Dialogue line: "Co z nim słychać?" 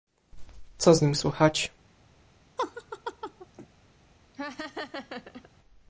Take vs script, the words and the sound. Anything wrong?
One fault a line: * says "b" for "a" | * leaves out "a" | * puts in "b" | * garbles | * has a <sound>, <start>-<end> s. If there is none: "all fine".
* has a laugh, 2.6-3.7 s
* has a laugh, 4.3-5.5 s